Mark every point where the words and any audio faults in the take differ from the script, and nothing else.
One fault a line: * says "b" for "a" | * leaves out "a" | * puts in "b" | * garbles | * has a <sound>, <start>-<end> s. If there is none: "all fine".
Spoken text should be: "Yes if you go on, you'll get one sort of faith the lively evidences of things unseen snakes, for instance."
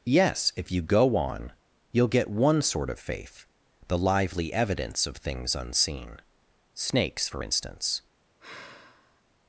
* says "evidence" for "evidences"
* has a sigh, 8.4-9.2 s